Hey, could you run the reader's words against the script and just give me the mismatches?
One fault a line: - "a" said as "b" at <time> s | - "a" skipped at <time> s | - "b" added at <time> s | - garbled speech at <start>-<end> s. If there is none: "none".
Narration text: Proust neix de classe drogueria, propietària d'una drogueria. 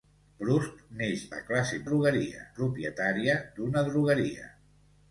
none